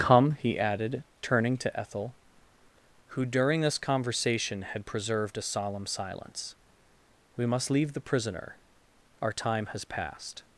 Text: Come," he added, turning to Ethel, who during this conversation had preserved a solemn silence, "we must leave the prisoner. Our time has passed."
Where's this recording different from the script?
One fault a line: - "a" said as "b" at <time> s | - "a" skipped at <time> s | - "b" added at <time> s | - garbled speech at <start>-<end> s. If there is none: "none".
none